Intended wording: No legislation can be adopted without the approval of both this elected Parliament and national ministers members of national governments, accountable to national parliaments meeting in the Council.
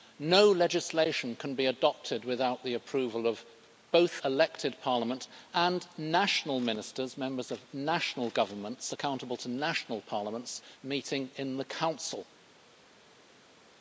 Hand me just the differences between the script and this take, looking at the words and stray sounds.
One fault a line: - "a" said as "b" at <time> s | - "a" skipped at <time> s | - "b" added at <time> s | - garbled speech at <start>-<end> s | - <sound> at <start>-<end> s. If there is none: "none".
- "this" skipped at 4.2 s